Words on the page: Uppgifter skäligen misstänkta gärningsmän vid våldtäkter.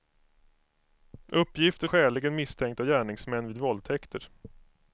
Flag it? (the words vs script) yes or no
no